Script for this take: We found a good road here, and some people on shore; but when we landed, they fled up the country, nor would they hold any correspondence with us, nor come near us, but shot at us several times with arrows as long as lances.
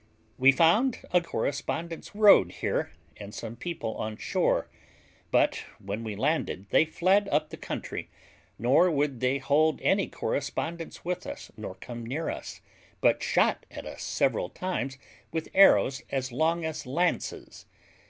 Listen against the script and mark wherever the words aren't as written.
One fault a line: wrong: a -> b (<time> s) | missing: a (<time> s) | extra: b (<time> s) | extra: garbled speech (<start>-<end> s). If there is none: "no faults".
wrong: good -> correspondence (1.2 s)